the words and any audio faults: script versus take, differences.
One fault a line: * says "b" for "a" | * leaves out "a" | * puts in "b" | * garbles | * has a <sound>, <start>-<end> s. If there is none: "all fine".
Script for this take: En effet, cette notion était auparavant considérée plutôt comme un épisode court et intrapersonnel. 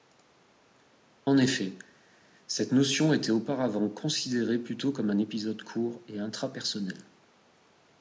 all fine